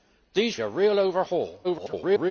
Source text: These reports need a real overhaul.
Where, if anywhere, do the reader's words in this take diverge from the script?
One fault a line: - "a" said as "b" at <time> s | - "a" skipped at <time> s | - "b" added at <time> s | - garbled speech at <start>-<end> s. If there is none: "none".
- "reports need" skipped at 0.6 s
- garbled speech at 1.6-2.3 s